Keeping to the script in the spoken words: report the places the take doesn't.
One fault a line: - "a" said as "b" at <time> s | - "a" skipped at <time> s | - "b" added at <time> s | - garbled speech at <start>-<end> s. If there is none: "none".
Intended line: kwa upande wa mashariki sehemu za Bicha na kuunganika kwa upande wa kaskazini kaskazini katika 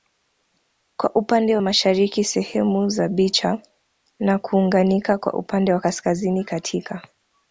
- "kaskazini" skipped at 6.4 s